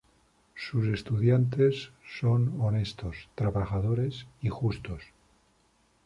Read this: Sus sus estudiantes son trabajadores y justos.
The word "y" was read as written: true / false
true